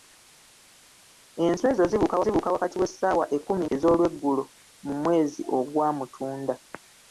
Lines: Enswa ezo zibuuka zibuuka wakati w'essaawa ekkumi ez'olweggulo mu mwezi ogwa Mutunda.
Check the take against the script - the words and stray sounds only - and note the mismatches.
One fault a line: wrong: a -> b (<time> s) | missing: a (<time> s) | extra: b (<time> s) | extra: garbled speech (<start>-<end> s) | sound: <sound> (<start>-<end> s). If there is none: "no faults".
no faults